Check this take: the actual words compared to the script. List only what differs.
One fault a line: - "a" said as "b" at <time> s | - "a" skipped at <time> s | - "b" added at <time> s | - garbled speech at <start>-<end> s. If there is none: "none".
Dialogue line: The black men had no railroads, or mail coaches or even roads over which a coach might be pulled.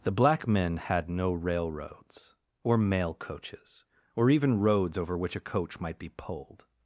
none